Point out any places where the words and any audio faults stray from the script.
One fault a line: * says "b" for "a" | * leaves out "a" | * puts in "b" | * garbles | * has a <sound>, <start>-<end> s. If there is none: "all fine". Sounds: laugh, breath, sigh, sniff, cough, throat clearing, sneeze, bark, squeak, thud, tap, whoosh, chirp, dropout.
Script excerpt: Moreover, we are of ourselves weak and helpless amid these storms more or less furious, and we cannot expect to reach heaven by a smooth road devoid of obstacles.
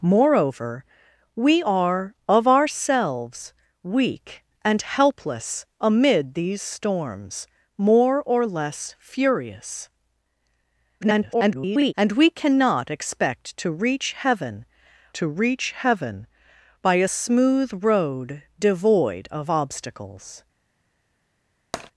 * garbles
* puts in "to reach heaven"
* has a tap, 21.7-21.9 s